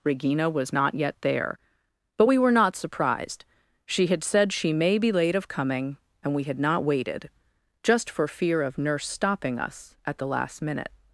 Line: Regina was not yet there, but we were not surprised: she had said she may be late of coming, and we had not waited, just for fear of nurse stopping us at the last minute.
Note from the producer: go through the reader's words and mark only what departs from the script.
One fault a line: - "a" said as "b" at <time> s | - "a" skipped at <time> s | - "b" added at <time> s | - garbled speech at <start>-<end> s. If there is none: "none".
none